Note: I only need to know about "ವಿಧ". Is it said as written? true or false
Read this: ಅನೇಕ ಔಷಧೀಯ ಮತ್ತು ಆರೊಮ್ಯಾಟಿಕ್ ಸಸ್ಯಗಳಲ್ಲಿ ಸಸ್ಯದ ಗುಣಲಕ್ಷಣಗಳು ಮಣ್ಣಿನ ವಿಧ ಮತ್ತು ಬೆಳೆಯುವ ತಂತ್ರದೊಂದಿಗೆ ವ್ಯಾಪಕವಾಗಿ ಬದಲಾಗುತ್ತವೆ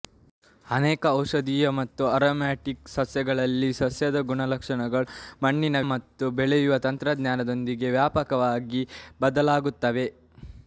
false